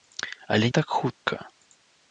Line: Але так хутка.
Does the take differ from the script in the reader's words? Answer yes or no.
no